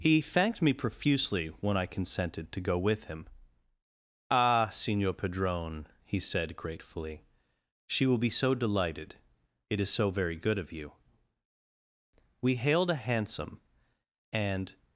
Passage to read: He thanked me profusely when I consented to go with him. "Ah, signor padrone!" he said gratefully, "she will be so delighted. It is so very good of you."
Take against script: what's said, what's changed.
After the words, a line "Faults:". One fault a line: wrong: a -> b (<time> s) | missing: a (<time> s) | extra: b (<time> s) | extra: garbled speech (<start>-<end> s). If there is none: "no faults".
He thanked me profusely when I consented to go with him. "Ah, signor padrone!" he said gratefully, "she will be so delighted. It is so very good of you." We hailed a hansom and
Faults:
extra: We hailed a hansom and (12.4 s)